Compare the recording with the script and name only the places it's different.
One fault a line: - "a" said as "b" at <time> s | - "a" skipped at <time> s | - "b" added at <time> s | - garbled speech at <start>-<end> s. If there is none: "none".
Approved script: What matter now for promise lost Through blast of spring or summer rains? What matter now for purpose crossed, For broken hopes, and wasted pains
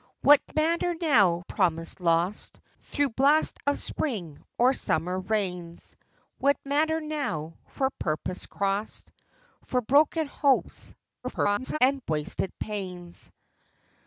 - "for" skipped at 1.4 s
- garbled speech at 11.2-11.8 s